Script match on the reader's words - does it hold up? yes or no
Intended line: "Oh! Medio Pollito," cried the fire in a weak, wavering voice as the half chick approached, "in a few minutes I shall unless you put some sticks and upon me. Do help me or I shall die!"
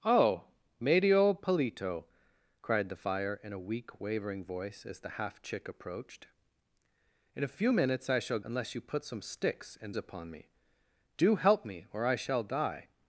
yes